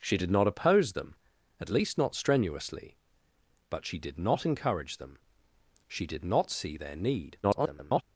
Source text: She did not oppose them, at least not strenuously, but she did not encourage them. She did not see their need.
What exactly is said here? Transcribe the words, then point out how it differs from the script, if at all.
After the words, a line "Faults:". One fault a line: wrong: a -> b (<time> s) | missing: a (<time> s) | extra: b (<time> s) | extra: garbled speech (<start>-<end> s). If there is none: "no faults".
She did not oppose them, at least not strenuously, but she did not encourage them. She did not see their need. [garbled]
Faults:
extra: garbled speech (7.4-8.0 s)